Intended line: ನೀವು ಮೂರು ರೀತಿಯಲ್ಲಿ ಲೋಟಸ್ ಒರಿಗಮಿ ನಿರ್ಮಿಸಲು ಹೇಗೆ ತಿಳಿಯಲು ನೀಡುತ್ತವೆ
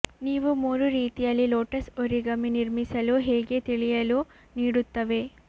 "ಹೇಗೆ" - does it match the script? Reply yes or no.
yes